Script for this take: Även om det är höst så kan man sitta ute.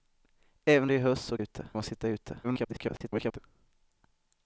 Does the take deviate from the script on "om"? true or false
true